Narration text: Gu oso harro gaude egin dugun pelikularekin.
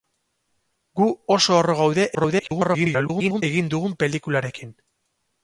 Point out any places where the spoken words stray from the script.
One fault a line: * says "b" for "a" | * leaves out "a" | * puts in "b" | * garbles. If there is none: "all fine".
* garbles